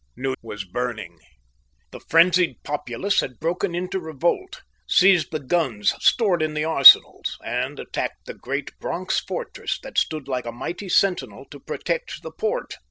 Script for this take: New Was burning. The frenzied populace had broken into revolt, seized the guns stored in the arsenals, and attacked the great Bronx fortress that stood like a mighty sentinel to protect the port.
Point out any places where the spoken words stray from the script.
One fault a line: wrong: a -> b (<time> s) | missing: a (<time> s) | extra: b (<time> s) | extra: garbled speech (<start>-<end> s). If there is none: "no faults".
no faults